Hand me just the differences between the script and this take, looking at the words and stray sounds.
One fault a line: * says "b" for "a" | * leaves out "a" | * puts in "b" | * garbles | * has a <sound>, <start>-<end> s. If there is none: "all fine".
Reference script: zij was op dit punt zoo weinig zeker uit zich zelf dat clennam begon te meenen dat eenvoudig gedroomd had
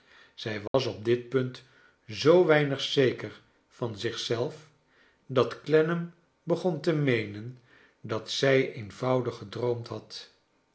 * has a dropout, 0.7-0.7 s
* says "van" for "uit"
* puts in "zij"